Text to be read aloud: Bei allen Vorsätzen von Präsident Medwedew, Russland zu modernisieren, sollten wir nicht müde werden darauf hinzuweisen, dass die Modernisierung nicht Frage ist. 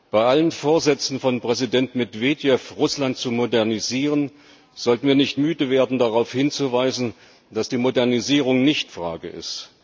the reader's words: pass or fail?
pass